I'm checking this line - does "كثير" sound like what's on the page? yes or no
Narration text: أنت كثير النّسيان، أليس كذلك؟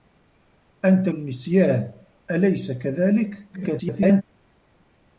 no